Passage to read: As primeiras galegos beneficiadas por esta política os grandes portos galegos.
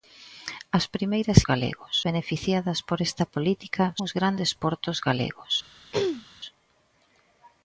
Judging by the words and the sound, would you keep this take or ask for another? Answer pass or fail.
fail